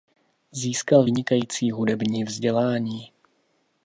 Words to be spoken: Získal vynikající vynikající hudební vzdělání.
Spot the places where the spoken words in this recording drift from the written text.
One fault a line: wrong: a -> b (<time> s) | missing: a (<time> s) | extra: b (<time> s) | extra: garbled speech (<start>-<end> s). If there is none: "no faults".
missing: vynikající (1.7 s)